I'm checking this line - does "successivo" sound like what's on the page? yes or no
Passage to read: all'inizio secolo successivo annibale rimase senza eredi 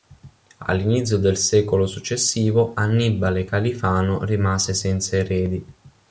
yes